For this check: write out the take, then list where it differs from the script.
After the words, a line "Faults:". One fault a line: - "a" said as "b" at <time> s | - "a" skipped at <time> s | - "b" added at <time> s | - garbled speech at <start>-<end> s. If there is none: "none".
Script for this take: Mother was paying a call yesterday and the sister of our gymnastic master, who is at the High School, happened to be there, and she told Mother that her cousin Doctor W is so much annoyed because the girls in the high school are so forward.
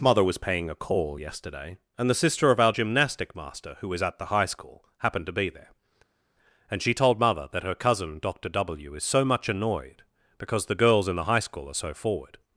Mother was paying a call yesterday and the sister of our gymnastic master, who is at the High School, happened to be there, and she told Mother that her cousin Doctor W is so much annoyed because the girls in the high school are so forward.
Faults:
none